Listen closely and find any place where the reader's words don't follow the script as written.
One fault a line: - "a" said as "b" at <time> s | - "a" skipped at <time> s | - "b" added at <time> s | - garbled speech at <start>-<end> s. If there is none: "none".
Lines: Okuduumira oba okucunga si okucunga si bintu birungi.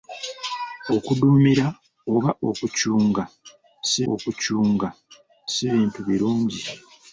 none